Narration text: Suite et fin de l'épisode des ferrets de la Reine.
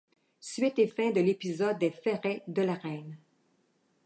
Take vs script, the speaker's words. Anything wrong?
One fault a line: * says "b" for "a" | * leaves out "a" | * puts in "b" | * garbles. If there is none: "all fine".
all fine